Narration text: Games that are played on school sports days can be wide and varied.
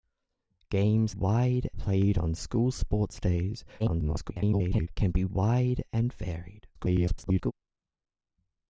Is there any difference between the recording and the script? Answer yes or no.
yes